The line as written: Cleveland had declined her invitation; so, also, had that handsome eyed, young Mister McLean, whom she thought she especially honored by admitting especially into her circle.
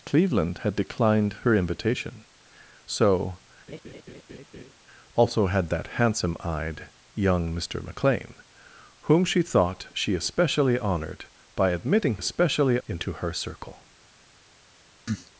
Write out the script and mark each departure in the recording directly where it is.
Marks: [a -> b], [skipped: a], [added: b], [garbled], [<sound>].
Cleveland had declined her invitation; so, [laugh] also, had that handsome eyed, young Mister McLean, whom she thought she especially honored by admitting especially into her circle. [cough]